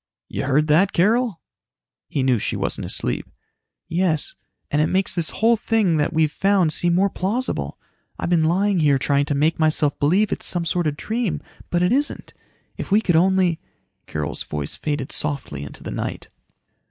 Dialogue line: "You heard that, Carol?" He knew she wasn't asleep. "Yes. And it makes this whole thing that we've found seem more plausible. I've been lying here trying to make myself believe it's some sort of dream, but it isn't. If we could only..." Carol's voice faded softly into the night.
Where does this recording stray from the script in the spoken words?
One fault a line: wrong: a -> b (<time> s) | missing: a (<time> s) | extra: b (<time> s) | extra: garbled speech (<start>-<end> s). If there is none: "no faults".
no faults